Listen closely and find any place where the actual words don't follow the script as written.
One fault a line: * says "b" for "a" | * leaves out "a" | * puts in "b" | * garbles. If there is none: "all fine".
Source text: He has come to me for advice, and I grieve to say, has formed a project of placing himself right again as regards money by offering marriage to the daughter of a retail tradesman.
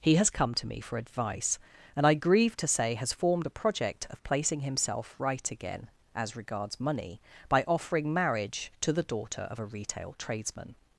all fine